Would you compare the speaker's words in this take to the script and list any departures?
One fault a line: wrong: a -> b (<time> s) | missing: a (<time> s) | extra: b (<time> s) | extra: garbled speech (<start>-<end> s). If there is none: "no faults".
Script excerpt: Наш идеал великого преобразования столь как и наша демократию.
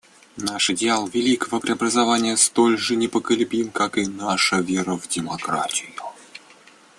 extra: же непоколебим (2.8 s)
extra: вера в (4.6 s)